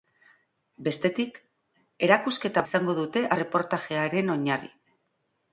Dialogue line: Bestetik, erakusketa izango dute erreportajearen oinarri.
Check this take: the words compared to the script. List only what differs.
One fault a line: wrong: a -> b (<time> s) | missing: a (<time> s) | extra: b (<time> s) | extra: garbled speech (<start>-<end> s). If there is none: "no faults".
no faults